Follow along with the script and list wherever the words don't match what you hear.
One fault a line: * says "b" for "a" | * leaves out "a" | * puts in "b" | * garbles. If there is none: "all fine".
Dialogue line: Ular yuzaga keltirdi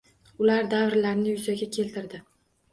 * puts in "davrlarni"